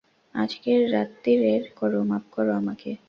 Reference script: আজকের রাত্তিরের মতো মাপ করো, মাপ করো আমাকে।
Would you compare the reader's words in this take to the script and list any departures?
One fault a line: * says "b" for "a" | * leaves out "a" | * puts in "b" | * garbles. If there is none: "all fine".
* leaves out "মতো মাপ"